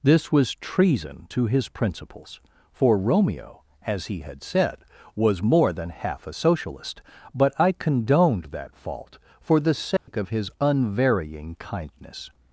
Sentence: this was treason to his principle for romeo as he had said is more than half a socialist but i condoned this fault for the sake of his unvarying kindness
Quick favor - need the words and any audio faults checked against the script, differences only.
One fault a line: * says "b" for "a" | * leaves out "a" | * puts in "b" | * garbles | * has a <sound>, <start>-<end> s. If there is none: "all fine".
* says "principles" for "principle"
* says "was" for "is"
* says "that" for "this"
* has a dropout, 10.0-10.1 s